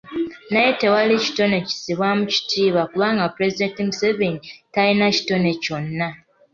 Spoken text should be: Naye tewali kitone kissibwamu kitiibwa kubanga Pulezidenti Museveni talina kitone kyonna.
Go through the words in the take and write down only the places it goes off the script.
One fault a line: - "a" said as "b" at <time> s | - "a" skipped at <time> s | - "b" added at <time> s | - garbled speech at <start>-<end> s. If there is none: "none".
none